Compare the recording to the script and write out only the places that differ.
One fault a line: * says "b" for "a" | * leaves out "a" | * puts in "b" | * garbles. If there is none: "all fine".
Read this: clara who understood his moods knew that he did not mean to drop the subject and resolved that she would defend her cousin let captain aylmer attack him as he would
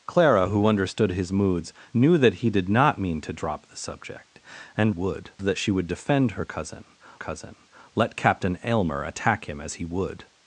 * says "would" for "resolved"
* puts in "cousin"